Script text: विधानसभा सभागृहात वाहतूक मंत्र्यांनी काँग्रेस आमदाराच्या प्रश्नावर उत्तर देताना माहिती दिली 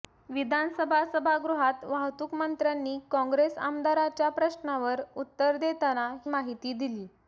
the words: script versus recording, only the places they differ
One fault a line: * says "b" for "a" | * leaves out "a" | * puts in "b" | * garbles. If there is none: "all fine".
all fine